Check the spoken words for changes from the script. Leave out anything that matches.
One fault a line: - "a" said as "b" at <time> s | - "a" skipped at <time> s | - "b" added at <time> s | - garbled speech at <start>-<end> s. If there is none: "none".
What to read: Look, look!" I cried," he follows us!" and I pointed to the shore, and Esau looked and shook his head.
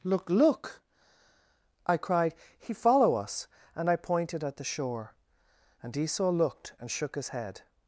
- "follows" said as "follow" at 2.7 s
- "to" said as "at" at 4.4 s